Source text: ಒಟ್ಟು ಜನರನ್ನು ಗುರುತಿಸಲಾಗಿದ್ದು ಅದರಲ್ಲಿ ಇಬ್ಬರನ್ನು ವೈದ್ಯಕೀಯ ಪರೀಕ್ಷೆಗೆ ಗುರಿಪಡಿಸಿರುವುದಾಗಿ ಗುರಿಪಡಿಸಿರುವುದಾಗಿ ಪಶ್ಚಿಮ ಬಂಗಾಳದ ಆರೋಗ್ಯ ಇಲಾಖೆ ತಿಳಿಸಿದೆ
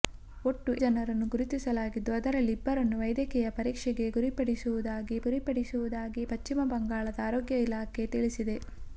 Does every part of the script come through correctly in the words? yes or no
yes